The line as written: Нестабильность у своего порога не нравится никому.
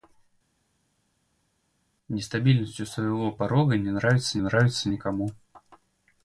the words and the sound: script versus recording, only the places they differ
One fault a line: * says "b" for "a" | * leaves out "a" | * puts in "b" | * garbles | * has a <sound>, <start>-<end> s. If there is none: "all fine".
* puts in "нравится"